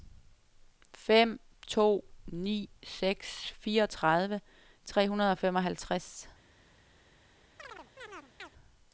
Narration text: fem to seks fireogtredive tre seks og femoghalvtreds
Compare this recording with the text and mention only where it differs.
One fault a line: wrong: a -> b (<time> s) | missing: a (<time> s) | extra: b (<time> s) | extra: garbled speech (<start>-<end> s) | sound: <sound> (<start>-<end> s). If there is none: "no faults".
extra: ni (2.3 s)
wrong: seks -> hundrede (5.1 s)
sound: chirp (7.6-8.5 s)